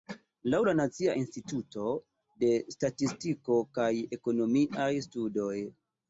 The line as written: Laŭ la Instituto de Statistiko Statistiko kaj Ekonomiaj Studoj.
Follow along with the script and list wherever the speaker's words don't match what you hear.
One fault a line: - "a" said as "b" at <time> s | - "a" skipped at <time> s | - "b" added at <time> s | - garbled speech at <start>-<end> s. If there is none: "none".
- "Nacia" added at 0.8 s
- "Statistiko" skipped at 3.6 s